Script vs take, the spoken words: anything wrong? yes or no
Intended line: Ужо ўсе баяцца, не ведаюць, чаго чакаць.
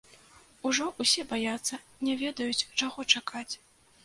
no